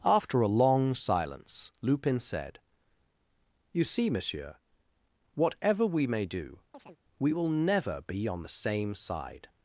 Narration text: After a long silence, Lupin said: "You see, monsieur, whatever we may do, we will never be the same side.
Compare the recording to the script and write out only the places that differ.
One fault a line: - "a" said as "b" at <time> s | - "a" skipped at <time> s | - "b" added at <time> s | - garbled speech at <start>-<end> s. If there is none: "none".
- "on" added at 8.3 s